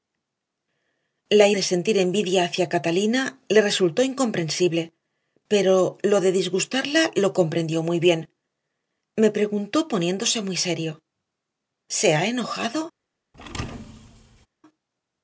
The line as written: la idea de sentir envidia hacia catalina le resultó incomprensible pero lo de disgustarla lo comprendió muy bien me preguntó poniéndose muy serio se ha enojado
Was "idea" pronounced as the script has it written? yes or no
no